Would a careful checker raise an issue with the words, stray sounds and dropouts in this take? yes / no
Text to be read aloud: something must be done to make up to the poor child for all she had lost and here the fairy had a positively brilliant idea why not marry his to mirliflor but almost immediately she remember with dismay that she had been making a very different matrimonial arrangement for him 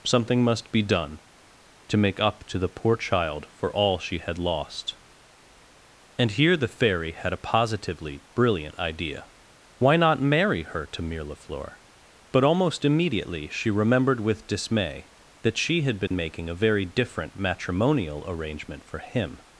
yes